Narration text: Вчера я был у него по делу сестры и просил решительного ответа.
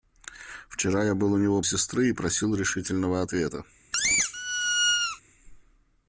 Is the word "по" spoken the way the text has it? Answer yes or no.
no